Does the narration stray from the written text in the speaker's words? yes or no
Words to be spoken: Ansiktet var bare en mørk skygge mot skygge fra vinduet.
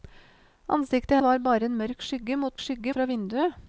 no